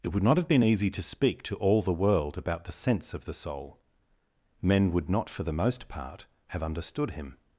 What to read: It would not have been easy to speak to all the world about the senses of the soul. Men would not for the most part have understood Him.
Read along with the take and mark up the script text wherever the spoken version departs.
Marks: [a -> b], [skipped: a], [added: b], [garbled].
It would not have been easy to speak to all the world about the [senses -> sense] of the soul. Men would not for the most part have understood Him.